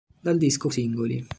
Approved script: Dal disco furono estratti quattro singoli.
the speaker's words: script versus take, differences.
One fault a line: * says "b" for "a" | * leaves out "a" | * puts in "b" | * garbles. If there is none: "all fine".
* leaves out "furono estratti quattro"